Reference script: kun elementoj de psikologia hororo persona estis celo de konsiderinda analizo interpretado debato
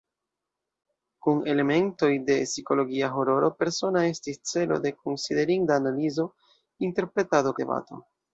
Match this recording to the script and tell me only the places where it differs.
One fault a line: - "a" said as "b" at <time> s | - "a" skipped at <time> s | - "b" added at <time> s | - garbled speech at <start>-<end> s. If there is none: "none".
none